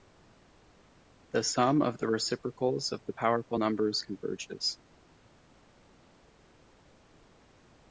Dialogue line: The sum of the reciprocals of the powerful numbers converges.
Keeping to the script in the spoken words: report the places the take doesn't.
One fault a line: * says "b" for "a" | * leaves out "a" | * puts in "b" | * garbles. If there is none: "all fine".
all fine